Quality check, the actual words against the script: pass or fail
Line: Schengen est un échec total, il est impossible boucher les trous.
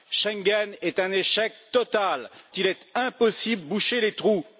pass